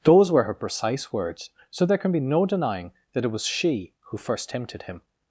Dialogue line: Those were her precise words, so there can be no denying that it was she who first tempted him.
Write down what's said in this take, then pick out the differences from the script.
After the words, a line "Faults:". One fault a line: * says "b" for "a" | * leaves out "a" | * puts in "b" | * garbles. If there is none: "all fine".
Those were her precise words, so there can be no denying that it was she who first tempted him.
Faults:
all fine